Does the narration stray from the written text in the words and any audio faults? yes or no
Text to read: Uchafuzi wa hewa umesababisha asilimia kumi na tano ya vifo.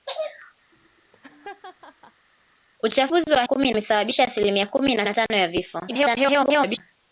yes